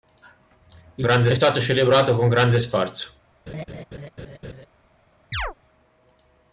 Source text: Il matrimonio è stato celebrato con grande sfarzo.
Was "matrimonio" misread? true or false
true